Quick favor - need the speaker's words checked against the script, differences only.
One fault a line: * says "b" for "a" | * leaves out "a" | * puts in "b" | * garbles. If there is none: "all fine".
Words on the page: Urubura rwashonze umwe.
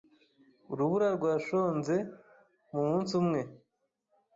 * puts in "mumunsi"